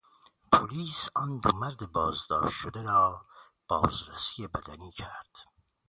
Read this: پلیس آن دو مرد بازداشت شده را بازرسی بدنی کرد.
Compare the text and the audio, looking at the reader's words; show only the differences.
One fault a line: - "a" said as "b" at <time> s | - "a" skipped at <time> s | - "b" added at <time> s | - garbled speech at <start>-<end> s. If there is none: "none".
none